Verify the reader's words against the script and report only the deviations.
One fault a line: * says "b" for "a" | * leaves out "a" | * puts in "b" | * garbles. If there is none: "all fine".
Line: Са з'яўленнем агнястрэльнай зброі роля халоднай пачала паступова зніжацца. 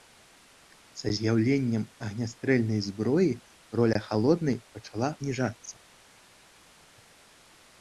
* leaves out "паступова"